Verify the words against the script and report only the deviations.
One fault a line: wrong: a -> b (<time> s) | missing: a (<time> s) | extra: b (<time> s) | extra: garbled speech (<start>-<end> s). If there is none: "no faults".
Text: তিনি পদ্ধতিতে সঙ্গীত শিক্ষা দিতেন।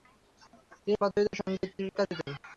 no faults